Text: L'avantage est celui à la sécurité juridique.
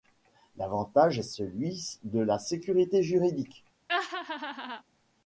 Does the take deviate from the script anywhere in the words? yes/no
yes